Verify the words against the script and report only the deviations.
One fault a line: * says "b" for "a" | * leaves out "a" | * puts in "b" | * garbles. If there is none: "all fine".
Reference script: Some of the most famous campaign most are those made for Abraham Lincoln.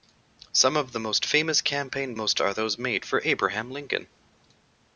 all fine